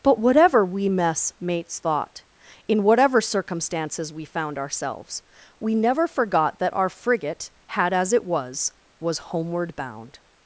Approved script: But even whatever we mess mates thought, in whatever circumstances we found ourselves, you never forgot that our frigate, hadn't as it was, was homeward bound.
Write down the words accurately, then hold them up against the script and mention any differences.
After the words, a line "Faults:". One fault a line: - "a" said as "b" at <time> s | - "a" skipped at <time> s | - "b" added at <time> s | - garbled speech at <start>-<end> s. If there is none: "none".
But whatever we mess mates thought, in whatever circumstances we found ourselves, we never forgot that our frigate, had as it was, was homeward bound.
Faults:
- "even" skipped at 0.2 s
- "you" said as "we" at 5.6 s
- "hadn't" said as "had" at 7.7 s